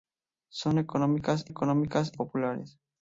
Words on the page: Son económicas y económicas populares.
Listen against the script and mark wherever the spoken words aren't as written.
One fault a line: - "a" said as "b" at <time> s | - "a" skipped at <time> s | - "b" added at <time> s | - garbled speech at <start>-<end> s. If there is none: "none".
none